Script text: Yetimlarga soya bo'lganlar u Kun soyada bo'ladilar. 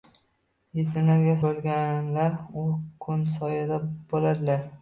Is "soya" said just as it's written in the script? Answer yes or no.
no